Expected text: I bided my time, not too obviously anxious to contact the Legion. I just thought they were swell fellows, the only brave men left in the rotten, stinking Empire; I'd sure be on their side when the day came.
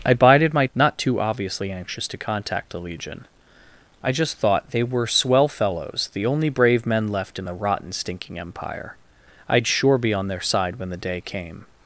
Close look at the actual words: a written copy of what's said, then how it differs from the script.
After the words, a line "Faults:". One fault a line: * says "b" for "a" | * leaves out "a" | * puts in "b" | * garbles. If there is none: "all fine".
I bided my not too obviously anxious to contact the Legion. I just thought they were swell fellows, the only brave men left in the rotten, stinking Empire; I'd sure be on their side when the day came.
Faults:
* leaves out "time"